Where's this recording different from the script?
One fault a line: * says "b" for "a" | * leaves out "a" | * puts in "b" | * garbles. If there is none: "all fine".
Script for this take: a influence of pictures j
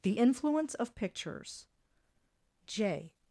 * says "the" for "a"